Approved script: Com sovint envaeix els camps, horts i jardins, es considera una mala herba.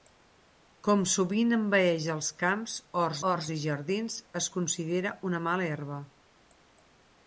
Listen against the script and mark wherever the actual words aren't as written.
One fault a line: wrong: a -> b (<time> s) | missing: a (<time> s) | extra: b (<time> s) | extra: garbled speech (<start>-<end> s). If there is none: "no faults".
extra: horts (3.3 s)